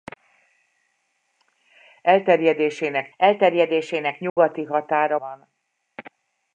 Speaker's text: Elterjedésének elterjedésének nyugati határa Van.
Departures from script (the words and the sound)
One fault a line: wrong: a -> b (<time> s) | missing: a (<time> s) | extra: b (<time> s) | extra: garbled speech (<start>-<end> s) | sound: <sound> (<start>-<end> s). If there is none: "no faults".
sound: dropout (4.3-4.4 s)